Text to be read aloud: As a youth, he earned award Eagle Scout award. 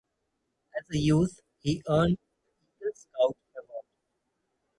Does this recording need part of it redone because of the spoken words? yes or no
yes